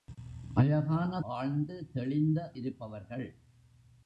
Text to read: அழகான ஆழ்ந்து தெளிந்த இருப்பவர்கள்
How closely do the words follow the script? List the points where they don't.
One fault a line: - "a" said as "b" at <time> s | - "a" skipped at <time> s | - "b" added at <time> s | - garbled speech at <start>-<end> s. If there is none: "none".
none